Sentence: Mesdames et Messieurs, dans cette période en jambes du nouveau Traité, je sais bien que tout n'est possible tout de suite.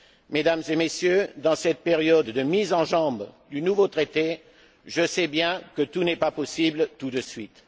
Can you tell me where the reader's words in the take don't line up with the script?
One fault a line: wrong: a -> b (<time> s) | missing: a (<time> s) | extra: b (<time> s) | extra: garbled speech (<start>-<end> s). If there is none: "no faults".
extra: de mise (2.2 s)
extra: pas (6.2 s)